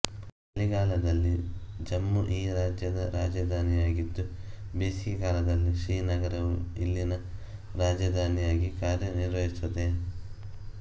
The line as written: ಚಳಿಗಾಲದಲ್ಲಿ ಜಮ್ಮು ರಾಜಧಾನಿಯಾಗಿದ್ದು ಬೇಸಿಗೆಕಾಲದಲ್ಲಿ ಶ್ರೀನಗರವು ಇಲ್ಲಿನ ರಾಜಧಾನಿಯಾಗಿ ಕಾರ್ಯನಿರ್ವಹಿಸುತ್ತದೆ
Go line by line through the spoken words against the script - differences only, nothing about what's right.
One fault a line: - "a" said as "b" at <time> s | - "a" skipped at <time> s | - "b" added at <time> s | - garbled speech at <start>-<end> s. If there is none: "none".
- "ಈ ರಾಜ್ಯದ" added at 2.3 s